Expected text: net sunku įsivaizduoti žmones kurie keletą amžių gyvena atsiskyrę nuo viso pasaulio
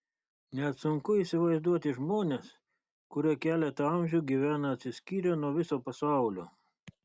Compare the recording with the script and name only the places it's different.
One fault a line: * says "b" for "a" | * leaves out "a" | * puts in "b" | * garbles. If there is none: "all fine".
all fine